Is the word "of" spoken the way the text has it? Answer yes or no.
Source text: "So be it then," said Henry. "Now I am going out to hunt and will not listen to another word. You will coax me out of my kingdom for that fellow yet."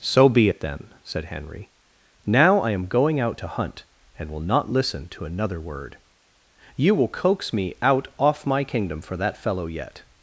no